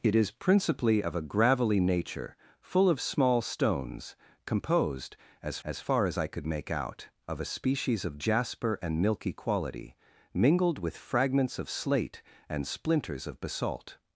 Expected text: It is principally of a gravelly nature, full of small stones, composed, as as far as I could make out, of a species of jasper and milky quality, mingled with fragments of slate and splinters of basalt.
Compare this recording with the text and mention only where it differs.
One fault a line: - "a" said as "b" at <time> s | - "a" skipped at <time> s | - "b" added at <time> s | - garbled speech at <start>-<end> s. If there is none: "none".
none